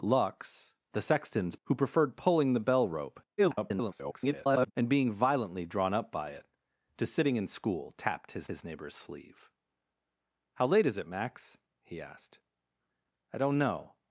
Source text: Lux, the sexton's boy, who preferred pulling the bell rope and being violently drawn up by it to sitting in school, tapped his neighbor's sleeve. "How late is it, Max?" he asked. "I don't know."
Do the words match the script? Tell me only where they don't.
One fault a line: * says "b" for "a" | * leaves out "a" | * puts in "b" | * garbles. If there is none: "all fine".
* leaves out "boy"
* garbles
* puts in "his"